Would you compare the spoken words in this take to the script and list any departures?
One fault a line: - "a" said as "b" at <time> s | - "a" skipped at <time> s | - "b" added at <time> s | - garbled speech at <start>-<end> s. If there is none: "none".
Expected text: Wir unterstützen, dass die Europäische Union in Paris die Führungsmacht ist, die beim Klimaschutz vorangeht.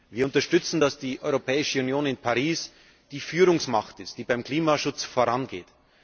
none